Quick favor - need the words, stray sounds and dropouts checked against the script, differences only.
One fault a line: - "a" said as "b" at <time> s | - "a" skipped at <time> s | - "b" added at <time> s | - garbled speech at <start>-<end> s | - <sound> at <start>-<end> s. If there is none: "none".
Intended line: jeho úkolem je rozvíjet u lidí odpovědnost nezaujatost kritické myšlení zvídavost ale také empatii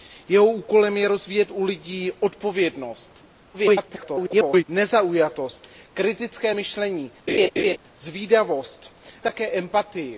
- garbled speech at 3.5-4.6 s
- laugh at 7.3-7.8 s
- "ale" skipped at 9.0 s